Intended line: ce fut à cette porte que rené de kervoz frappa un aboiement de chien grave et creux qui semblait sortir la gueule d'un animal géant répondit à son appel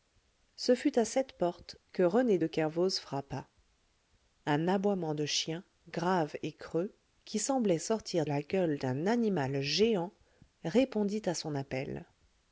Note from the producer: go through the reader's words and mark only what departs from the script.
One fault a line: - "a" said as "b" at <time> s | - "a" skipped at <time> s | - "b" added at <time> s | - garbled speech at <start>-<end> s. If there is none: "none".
none